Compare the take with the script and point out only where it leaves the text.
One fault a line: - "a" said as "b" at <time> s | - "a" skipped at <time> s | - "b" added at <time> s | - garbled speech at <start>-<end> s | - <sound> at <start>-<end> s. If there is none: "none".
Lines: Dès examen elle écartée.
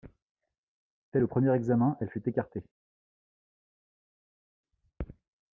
- "le premier" added at 1.2 s
- "fut" added at 2.1 s